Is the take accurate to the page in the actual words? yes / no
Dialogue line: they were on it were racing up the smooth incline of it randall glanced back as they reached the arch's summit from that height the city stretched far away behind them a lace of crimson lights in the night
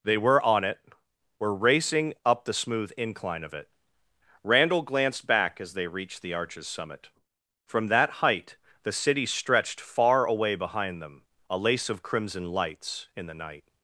yes